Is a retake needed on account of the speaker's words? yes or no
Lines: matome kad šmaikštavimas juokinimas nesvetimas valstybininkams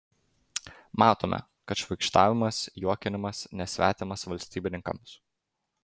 no